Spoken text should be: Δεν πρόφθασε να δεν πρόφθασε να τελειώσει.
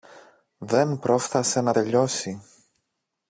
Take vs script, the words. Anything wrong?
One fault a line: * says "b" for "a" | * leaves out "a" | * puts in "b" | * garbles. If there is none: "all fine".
* leaves out "δεν πρόφθασε να"